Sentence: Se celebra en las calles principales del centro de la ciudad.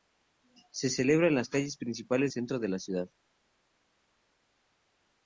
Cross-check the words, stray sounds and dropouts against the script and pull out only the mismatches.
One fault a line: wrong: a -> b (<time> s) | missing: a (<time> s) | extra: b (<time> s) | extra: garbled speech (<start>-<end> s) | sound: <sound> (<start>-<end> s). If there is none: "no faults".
missing: del (2.3 s)